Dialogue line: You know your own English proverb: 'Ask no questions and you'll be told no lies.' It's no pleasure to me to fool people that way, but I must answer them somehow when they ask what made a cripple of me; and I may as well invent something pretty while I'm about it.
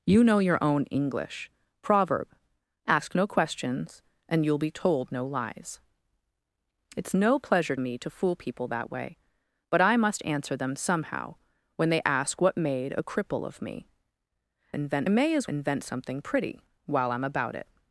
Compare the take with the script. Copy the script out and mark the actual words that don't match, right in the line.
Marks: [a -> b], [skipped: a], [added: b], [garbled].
You know your own English proverb: 'Ask no questions and you'll be told no lies.' It's no pleasure [skipped: to] me to fool people that way, but I must answer them somehow when they ask what made a cripple of me; [and -> invent] I may as [skipped: well] invent something pretty while I'm about it.